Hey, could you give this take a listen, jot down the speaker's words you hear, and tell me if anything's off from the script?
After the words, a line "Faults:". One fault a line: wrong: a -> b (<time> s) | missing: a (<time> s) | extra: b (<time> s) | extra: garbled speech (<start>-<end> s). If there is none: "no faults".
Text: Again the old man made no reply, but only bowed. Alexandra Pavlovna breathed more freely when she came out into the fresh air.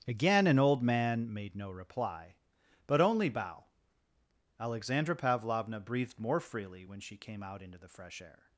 Again an old man made no reply, but only bow. Alexandra Pavlovna breathed more freely when she came out into the fresh air.
Faults:
wrong: the -> an (0.5 s)
wrong: bowed -> bow (3.3 s)